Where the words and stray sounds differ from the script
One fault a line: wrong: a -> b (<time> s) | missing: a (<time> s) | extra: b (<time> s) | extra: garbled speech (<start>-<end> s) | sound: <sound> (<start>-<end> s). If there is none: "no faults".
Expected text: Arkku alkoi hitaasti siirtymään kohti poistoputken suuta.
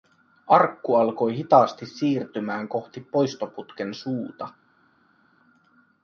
no faults